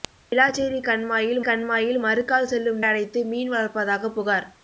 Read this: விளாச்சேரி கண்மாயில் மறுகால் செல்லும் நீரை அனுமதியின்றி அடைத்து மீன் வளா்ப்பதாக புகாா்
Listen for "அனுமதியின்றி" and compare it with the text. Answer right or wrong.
wrong